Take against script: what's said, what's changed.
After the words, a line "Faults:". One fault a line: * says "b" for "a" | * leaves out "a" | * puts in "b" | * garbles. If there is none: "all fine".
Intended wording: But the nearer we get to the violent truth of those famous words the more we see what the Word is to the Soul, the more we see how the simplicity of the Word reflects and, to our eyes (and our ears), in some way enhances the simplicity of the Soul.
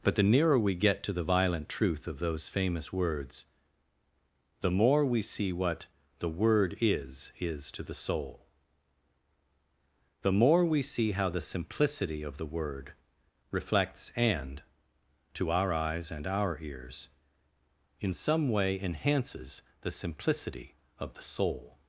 But the nearer we get to the violent truth of those famous words the more we see what the Word is is to the Soul, the more we see how the simplicity of the Word reflects and, to our eyes (and our ears), in some way enhances the simplicity of the Soul.
Faults:
* puts in "is"